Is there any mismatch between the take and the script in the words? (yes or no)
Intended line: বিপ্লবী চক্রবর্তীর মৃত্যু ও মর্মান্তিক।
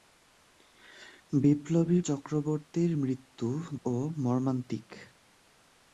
no